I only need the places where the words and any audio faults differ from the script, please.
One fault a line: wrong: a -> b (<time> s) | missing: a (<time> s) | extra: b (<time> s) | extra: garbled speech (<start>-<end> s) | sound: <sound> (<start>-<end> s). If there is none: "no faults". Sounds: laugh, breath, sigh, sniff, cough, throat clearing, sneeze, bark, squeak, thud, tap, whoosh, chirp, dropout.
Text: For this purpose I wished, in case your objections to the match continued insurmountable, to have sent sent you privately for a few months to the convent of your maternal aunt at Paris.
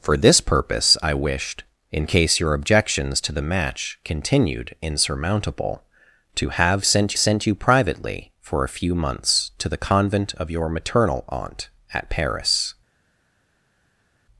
no faults